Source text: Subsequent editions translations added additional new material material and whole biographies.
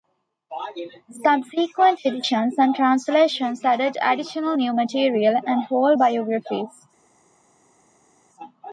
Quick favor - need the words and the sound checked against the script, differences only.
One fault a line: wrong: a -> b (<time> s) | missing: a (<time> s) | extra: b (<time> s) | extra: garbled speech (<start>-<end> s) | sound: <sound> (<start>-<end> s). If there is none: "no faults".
extra: and (2.6 s)
missing: material (5.4 s)